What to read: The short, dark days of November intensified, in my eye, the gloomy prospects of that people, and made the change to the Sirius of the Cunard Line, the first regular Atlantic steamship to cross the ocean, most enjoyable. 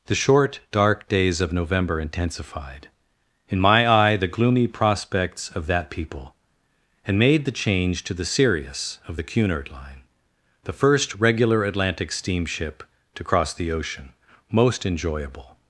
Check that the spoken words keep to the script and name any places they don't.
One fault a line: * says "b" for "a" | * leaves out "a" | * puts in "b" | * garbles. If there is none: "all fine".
all fine